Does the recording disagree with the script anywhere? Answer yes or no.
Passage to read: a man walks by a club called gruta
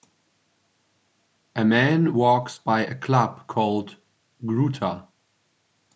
no